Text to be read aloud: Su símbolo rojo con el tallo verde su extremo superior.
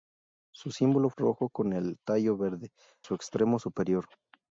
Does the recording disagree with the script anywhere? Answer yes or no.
no